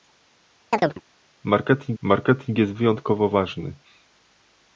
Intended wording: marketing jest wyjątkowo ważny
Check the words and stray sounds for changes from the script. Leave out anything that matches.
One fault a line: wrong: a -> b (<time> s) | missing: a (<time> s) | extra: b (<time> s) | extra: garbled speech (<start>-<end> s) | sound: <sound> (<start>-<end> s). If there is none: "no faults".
sound: chirp (0.7-1.0 s)
extra: marketing (2.0 s)